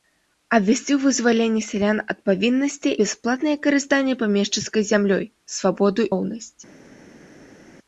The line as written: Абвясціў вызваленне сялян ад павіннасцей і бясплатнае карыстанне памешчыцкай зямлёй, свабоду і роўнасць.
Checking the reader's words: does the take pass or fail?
fail